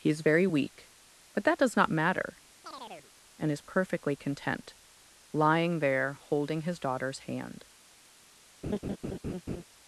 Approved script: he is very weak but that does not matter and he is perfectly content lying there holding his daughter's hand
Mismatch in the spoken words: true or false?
true